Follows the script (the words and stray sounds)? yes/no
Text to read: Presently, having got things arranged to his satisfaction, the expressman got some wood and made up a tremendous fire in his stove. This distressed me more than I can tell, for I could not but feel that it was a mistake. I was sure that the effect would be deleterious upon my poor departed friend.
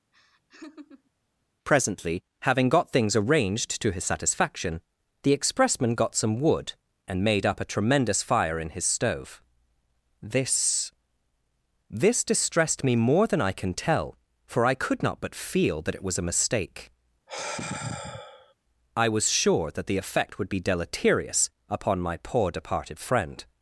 no